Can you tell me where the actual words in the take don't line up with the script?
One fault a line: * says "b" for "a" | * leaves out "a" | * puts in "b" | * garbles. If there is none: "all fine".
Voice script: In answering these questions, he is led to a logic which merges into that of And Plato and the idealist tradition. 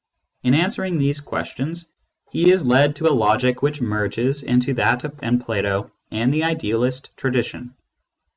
all fine